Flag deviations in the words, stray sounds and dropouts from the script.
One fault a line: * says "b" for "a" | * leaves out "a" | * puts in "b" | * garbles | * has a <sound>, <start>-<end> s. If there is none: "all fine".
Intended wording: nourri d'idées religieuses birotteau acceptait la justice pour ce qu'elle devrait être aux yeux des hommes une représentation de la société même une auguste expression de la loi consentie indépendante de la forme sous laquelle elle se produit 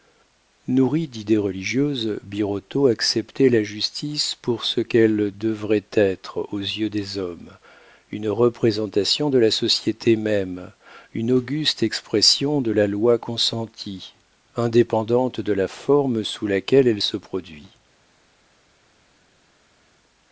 all fine